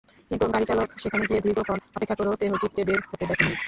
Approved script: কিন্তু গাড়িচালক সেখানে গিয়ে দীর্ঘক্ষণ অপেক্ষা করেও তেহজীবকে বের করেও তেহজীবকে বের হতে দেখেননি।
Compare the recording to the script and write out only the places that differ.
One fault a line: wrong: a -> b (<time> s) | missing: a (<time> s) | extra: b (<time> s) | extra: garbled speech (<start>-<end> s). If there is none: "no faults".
missing: করেও তেহজীবকে বের (3.0 s)